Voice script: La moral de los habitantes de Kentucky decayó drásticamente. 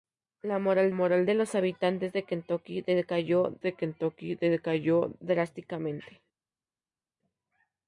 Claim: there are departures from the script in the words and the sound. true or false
true